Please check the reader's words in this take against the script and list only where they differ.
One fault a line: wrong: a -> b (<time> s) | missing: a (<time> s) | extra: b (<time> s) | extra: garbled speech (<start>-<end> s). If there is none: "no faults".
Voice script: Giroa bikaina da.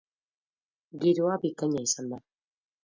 extra: izan (1.9 s)